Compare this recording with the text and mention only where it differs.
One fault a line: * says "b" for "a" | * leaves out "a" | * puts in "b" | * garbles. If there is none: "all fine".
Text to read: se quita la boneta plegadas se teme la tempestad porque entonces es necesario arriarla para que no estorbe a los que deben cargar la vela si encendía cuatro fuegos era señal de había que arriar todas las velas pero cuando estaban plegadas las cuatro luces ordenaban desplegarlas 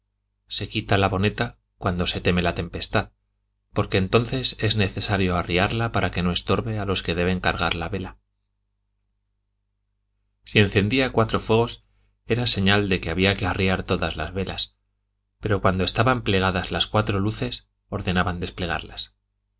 * says "cuando" for "plegadas"
* puts in "que"